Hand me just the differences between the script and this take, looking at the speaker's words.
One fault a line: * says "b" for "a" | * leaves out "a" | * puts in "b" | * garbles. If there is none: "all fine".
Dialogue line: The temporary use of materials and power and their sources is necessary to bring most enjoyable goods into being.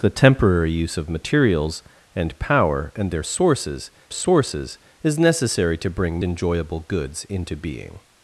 * puts in "sources"
* leaves out "most"